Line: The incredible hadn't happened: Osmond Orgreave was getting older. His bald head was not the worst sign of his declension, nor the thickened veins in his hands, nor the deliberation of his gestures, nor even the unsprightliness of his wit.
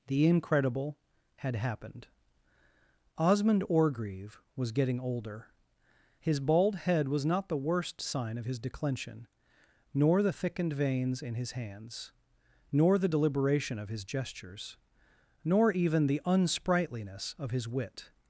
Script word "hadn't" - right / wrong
wrong